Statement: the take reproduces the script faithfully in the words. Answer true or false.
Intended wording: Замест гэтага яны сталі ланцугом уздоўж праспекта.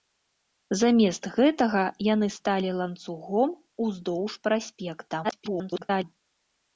false